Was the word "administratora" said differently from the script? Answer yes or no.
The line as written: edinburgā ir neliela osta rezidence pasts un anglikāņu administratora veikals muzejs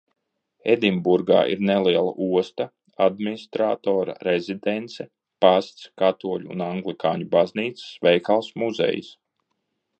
yes